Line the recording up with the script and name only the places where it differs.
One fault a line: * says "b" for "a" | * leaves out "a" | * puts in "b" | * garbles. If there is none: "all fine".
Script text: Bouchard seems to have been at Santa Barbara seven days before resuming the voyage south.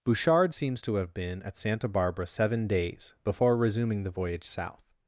all fine